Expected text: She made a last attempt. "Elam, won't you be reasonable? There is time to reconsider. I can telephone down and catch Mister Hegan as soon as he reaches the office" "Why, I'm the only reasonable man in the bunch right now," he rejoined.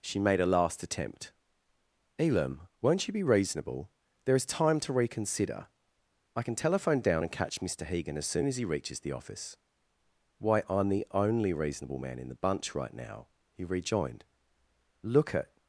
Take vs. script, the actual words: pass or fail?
fail